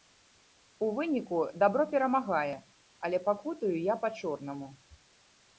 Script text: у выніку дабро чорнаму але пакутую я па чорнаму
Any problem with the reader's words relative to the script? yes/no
yes